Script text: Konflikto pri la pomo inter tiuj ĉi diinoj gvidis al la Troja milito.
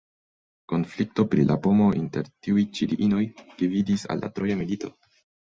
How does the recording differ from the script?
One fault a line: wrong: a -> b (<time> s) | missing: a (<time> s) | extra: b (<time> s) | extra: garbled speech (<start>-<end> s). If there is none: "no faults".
no faults